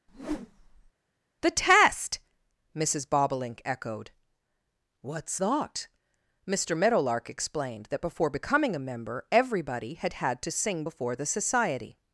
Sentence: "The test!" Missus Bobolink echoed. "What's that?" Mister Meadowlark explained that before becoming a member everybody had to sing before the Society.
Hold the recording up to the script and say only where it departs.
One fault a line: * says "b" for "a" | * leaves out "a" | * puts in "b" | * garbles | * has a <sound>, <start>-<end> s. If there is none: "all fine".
* has a whoosh, 0.1-0.9 s
* puts in "had"